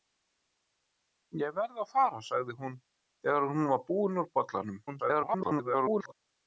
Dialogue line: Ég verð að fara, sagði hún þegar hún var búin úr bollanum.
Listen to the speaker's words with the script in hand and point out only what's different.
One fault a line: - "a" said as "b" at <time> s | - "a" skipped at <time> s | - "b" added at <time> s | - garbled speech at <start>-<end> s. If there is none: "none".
- garbled speech at 4.9-6.1 s